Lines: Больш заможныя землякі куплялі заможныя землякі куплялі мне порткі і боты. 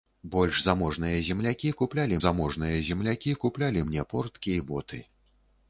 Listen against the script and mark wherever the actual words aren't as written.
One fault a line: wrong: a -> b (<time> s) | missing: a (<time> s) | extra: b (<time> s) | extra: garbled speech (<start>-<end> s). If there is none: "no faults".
no faults